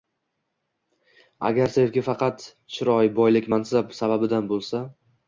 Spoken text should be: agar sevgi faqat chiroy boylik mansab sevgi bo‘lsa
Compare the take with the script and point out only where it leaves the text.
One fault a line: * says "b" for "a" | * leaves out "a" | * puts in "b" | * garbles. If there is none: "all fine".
* says "sababidan" for "sevgi"